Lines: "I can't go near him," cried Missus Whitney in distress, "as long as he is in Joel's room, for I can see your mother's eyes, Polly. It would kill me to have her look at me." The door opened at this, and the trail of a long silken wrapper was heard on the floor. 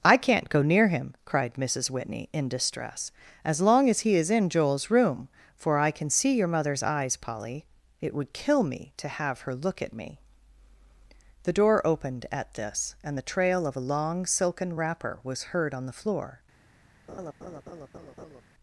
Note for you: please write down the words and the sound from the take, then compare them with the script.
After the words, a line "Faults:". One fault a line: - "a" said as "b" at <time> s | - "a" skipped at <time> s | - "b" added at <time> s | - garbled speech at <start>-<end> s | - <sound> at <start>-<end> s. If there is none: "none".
"I can't go near him," cried Missus Whitney in distress, "as long as he is in Joel's room, for I can see your mother's eyes, Polly. It would kill me to have her look at me." The door opened at this, and the trail of a long silken wrapper was heard on the floor.
Faults:
- laugh at 17.1-18.4 s